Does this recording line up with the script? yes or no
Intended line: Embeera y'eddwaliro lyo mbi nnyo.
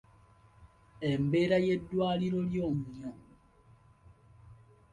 no